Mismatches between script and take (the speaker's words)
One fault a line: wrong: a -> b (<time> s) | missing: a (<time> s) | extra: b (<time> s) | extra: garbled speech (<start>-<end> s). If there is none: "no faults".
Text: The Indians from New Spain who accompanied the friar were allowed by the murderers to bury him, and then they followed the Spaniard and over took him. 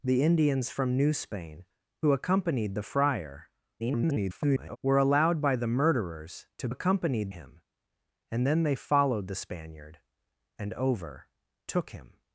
extra: garbled speech (3.8-4.8 s)
wrong: bury -> accompanied (6.7 s)